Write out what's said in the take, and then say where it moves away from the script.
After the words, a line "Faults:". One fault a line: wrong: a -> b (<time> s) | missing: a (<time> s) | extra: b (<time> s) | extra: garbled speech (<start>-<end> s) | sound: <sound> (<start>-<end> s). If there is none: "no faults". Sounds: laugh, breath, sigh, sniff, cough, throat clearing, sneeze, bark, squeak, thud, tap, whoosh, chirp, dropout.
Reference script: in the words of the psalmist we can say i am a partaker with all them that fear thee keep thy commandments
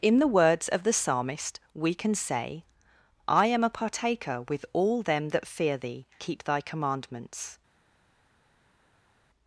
in the words of the psalmist we can say i am a partaker with all them that fear thee keep thy commandments
Faults:
no faults